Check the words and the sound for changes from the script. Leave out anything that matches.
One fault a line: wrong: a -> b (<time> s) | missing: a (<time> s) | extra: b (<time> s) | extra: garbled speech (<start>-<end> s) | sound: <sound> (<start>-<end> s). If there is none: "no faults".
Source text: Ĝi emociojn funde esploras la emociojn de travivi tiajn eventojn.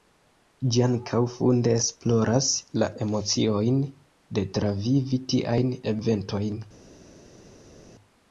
wrong: emociojn -> ankaŭ (0.8 s)